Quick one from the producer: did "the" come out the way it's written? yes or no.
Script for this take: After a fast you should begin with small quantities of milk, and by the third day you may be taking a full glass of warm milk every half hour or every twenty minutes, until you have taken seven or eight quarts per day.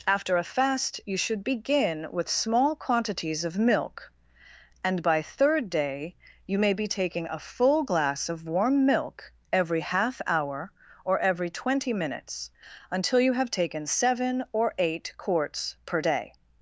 no